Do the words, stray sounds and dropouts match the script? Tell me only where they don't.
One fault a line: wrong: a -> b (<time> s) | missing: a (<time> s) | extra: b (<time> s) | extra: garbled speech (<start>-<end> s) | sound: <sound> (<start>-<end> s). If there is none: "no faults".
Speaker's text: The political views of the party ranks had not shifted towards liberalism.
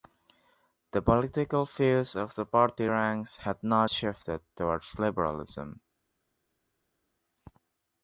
no faults